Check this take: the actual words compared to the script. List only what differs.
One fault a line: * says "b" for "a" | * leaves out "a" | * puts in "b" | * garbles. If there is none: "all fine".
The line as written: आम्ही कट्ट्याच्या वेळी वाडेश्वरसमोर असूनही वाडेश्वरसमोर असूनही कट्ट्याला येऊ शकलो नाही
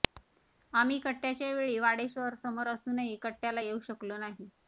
* leaves out "वाडेश्वरसमोर असूनही"